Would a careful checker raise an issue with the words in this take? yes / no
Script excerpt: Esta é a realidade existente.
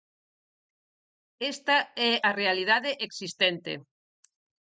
no